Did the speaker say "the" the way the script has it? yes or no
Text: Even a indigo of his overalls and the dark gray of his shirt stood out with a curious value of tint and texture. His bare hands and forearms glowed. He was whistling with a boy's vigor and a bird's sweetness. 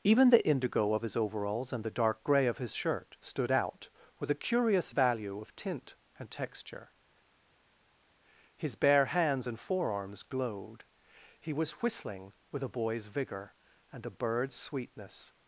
yes